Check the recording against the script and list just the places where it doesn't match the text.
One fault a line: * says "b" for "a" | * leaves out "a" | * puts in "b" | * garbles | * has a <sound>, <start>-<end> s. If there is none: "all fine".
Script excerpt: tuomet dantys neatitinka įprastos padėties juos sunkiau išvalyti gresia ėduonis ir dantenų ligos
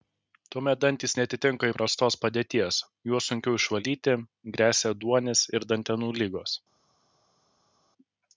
all fine